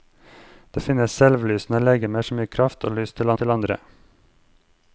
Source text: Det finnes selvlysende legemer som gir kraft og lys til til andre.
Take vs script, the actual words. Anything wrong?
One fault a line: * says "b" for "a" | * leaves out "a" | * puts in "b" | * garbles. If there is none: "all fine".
all fine